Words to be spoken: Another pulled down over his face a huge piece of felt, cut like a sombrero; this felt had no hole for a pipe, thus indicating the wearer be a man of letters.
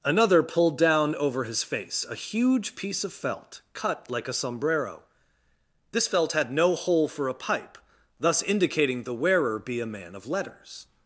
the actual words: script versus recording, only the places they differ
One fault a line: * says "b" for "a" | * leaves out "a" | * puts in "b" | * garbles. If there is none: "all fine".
all fine